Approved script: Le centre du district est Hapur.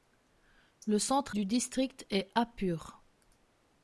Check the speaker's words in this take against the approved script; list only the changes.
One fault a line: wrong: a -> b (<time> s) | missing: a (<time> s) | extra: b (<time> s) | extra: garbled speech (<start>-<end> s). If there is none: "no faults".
no faults